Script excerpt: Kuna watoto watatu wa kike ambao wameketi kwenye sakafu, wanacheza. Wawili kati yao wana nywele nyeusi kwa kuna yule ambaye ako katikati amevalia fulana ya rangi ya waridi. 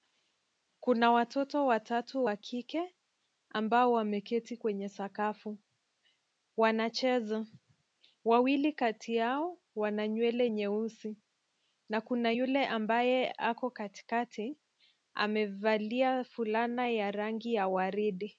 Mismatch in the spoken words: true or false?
true